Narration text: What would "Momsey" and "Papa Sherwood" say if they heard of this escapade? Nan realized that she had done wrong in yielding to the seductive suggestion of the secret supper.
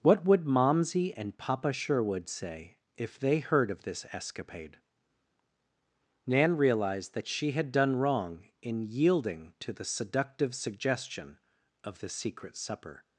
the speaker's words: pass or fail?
pass